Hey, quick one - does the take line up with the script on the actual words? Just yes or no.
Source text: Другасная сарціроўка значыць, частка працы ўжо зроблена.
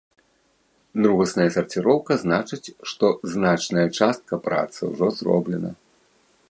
no